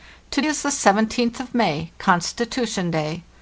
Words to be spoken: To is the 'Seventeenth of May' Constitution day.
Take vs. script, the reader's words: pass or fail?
pass